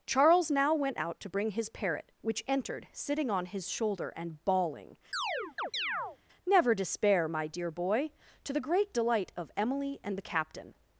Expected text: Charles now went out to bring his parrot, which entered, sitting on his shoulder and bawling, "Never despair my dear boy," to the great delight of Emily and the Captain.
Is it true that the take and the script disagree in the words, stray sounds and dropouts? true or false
true